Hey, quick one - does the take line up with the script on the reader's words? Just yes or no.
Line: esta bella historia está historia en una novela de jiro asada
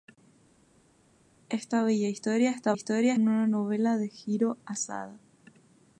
yes